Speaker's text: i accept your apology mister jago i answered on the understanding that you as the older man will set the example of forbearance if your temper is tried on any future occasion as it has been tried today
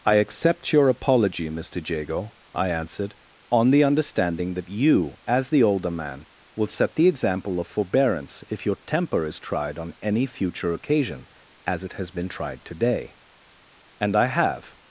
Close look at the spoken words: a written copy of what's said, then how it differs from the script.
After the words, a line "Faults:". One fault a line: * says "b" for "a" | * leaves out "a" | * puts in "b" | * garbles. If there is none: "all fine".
i accept your apology mister jago i answered on the understanding that you as the older man will set the example of forbearance if your temper is tried on any future occasion as it has been tried today and i have
Faults:
* puts in "and i have"